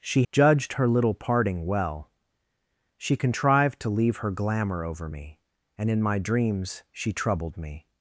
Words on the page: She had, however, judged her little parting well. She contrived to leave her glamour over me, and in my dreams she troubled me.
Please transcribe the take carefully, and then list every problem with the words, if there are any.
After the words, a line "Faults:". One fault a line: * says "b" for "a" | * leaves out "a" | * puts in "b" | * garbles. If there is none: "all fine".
She judged her little parting well. She contrived to leave her glamour over me, and in my dreams she troubled me.
Faults:
* leaves out "had however"